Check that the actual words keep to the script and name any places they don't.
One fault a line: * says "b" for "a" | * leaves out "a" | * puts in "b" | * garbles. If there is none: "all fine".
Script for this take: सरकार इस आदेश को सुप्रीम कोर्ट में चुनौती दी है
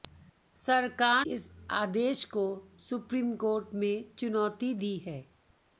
all fine